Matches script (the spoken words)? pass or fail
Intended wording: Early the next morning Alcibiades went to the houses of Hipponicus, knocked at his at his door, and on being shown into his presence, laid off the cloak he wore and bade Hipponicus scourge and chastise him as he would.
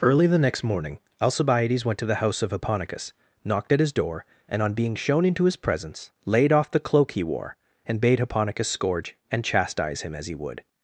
fail